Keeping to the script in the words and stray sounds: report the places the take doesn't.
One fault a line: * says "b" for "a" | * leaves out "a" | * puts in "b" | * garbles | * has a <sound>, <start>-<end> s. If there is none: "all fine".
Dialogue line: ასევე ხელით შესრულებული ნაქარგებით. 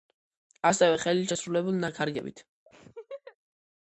* has a laugh, 2.7-3.4 s